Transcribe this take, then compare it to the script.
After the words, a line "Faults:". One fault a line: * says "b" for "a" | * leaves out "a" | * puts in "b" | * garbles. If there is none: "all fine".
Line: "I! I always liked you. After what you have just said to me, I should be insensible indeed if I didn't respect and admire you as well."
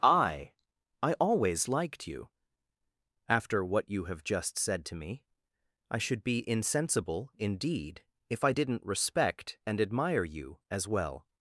"I! I always liked you. After what you have just said to me, I should be insensible indeed if I didn't respect and admire you as well."
Faults:
all fine